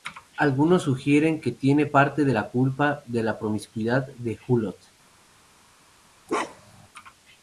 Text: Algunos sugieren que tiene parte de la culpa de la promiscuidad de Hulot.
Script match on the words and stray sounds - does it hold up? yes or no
no